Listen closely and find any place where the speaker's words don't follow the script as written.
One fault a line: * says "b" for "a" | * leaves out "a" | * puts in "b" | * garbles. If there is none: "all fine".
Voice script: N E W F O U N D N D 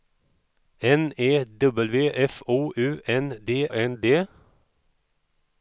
all fine